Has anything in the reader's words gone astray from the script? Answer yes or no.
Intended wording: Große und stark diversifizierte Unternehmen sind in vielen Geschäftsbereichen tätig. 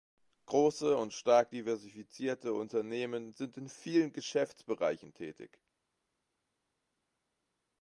no